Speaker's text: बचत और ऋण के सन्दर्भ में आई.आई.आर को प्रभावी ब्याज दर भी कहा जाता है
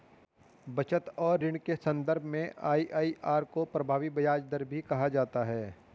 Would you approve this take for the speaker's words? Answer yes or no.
yes